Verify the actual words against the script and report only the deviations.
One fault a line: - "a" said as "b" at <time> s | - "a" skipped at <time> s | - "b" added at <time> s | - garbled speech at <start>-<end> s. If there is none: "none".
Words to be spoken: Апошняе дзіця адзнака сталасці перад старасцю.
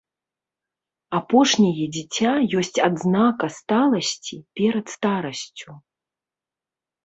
- "ёсць" added at 2.6 s